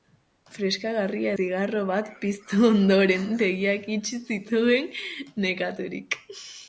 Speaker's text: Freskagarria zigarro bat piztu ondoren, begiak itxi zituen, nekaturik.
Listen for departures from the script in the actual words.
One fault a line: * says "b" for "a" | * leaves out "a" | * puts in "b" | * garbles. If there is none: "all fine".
all fine